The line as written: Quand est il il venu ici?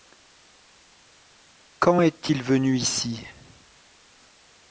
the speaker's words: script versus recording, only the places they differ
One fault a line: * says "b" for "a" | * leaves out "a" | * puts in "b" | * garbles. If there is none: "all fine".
* leaves out "il"